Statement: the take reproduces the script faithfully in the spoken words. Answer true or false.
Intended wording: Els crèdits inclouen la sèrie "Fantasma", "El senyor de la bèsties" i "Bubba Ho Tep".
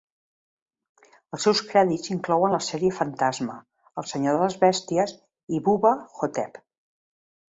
false